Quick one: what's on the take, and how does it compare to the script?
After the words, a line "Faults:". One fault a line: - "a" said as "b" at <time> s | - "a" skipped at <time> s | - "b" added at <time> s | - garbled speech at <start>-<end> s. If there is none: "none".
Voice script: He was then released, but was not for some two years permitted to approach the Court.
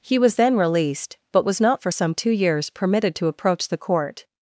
He was then released, but was not for some two years permitted to approach the Court.
Faults:
none